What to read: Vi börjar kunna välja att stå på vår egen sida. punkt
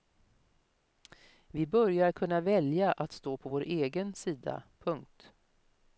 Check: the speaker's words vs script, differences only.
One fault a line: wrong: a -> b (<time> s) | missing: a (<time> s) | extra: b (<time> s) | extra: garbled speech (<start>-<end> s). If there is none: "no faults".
no faults